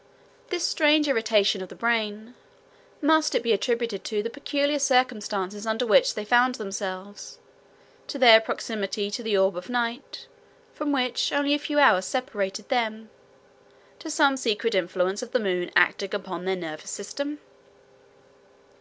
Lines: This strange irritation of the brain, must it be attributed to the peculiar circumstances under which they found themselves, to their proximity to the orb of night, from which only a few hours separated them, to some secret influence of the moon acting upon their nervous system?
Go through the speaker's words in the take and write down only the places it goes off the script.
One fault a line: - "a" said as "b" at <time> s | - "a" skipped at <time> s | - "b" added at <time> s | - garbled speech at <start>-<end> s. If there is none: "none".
none